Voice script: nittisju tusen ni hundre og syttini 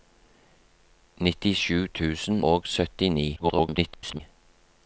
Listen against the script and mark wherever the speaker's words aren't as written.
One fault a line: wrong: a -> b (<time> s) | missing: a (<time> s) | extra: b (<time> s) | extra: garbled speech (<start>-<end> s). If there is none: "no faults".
missing: ni hundre (2.4 s)
extra: garbled speech (3.4-4.2 s)